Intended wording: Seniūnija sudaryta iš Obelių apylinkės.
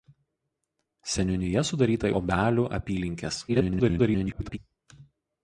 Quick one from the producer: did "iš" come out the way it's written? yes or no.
no